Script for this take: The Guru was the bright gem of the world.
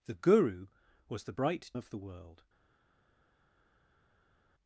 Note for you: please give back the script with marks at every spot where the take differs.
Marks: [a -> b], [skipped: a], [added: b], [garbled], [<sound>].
The Guru was the bright [skipped: gem] of the world.